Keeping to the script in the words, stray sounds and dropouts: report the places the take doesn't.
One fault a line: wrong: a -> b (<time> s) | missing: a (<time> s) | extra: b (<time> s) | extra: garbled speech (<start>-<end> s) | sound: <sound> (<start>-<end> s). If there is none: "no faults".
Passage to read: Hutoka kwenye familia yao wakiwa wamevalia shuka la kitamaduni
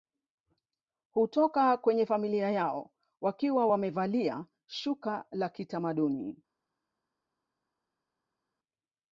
no faults